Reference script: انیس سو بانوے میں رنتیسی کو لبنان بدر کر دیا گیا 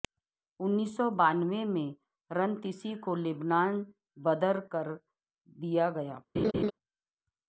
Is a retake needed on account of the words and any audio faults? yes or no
yes